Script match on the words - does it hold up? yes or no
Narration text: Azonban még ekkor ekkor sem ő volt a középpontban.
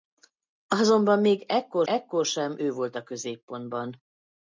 yes